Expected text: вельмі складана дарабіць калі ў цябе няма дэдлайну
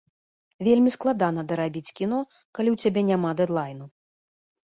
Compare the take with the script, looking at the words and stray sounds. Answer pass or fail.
fail